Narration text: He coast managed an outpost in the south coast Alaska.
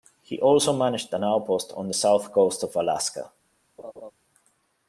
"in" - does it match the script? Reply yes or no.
no